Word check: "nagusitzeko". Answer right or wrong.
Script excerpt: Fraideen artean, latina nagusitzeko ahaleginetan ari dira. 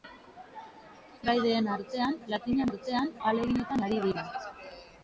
wrong